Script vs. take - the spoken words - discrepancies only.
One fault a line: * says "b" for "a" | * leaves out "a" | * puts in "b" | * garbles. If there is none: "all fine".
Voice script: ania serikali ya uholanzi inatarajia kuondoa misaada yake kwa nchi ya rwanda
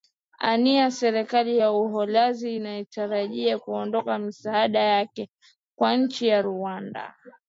all fine